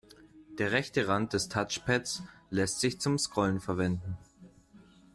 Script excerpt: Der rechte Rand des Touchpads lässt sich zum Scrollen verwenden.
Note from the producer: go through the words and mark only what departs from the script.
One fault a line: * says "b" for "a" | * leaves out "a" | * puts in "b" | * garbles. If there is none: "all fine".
all fine